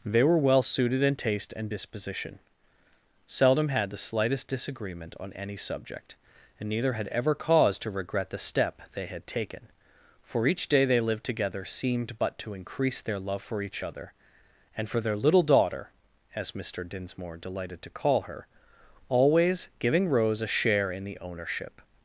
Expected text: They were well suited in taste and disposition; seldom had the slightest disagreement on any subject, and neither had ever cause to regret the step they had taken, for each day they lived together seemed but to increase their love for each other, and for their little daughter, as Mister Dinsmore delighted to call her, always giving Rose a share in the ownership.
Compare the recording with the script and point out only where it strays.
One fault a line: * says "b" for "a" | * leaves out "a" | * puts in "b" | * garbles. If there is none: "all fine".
all fine